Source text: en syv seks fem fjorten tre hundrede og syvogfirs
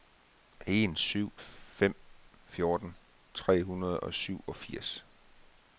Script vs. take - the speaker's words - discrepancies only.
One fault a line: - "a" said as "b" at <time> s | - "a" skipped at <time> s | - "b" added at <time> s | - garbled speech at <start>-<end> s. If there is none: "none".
- "seks" skipped at 1.4 s